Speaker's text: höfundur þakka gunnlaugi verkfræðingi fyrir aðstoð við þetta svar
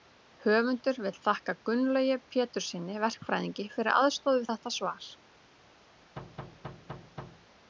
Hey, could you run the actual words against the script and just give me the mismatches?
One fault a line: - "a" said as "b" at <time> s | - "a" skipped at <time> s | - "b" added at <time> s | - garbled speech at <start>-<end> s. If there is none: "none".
- "vill" added at 1.1 s
- "péturssyni" added at 2.4 s